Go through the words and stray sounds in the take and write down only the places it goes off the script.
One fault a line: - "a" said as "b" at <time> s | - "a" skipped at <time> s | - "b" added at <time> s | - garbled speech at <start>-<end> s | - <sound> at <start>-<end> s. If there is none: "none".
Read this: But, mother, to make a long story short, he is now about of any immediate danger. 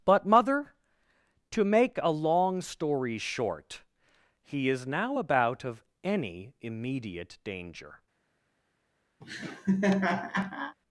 - laugh at 9.2-10.8 s